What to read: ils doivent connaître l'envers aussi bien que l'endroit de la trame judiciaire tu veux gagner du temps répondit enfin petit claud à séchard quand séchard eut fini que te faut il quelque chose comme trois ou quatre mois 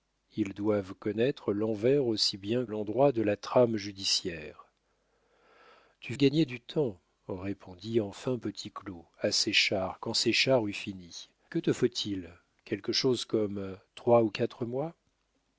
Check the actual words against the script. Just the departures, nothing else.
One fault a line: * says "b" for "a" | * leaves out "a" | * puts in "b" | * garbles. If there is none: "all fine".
* leaves out "que"
* leaves out "veux"